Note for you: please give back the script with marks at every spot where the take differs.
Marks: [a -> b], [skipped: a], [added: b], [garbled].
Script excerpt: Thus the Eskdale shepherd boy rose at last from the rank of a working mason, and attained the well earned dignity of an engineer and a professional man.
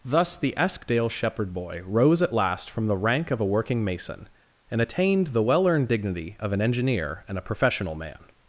Thus the Eskdale shepherd boy rose at last from the rank of a working mason, and attained the well earned dignity of an engineer and a professional man.